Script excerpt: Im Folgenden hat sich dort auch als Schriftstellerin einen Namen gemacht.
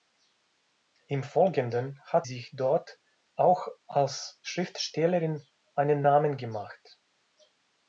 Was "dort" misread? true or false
false